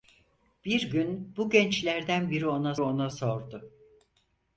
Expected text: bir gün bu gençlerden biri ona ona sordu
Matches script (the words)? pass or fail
pass